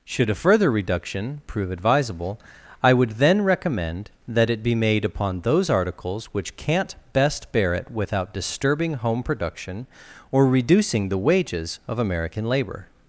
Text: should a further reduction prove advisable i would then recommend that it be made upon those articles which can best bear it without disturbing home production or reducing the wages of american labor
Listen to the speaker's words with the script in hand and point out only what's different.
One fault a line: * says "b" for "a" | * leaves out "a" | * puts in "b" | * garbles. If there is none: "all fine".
* says "can't" for "can"